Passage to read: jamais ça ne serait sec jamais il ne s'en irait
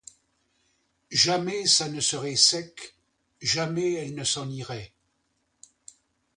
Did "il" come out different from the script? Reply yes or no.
yes